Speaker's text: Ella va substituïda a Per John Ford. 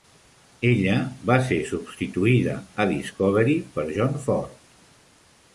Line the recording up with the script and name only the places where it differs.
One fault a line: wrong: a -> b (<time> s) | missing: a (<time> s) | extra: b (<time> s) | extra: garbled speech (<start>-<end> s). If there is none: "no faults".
extra: ser (1.5 s)
extra: Discovery (3.0 s)